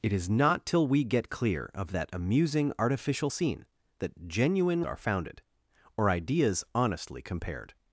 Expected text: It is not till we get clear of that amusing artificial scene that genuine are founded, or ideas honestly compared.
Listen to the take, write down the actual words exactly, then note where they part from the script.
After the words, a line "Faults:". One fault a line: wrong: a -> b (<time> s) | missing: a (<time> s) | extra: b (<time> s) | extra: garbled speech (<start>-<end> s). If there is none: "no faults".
It is not till we get clear of that amusing artificial scene that genuine are founded, or ideas honestly compared.
Faults:
no faults